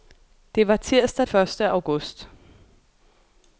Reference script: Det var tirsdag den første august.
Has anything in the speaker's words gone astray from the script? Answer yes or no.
yes